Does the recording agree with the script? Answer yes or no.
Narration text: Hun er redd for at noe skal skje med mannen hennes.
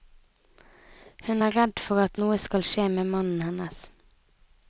yes